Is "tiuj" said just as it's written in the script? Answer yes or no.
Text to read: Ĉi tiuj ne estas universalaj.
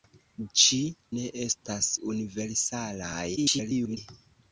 no